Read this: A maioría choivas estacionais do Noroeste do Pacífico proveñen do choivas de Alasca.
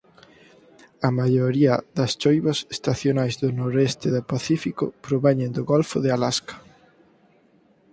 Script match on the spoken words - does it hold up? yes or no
no